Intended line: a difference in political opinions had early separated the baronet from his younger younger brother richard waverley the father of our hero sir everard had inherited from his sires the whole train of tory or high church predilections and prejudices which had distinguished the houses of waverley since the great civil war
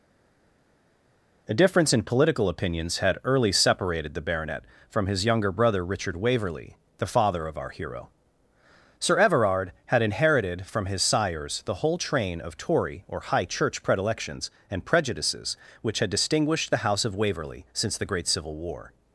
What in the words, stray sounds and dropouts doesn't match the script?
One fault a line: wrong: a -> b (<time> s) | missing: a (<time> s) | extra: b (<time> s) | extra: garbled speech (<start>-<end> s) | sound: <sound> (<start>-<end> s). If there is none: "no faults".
missing: younger (5.5 s)
wrong: houses -> house (16.8 s)